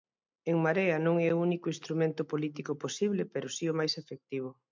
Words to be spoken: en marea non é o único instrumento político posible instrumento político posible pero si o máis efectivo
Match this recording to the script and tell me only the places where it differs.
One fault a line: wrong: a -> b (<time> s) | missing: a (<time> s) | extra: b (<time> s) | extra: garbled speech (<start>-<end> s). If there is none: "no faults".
missing: instrumento político posible (3.2 s)